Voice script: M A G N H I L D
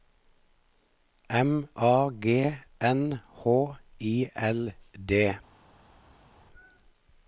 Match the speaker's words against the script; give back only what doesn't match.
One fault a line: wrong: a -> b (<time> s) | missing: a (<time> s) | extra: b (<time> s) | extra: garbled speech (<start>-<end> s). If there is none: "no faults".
no faults